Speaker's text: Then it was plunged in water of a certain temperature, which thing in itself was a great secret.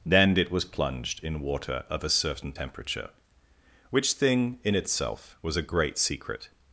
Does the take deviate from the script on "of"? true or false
false